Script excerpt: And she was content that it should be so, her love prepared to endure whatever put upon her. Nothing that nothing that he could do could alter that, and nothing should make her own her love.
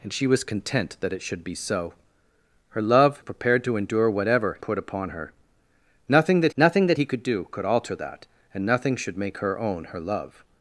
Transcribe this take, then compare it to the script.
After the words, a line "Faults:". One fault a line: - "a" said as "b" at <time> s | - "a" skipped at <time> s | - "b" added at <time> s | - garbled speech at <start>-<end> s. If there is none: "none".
And she was content that it should be so, her love prepared to endure whatever put upon her. Nothing that nothing that he could do could alter that, and nothing should make her own her love.
Faults:
none